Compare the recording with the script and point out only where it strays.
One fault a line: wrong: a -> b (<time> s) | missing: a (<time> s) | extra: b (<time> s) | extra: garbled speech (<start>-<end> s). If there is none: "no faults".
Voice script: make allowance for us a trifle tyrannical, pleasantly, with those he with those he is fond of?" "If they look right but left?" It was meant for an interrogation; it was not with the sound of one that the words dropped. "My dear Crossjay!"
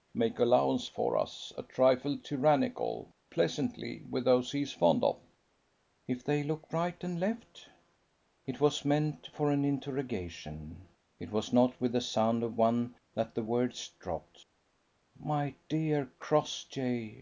missing: with those he (4.6 s)
wrong: but -> and (7.0 s)